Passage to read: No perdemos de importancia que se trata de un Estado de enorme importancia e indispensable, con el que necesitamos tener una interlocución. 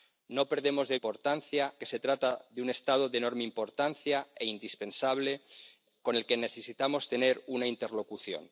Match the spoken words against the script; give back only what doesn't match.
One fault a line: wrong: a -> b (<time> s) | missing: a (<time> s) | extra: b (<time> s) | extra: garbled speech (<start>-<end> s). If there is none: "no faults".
no faults